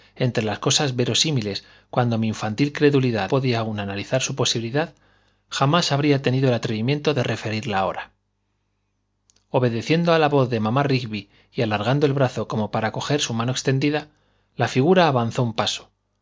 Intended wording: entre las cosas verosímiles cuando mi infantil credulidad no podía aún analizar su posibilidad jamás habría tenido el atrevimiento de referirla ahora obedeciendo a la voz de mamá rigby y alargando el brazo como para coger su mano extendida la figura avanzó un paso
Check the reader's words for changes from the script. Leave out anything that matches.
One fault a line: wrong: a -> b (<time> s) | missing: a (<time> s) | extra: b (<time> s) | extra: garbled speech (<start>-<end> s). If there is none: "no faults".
missing: no (3.3 s)